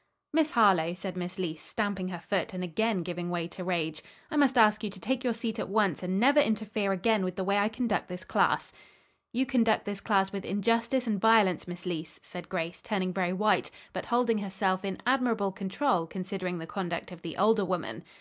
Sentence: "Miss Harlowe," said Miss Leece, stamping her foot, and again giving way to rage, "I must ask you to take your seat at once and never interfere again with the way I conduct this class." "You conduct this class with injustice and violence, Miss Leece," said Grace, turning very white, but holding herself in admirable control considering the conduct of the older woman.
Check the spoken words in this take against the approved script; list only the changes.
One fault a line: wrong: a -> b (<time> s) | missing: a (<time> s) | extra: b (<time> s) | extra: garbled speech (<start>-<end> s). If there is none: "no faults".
no faults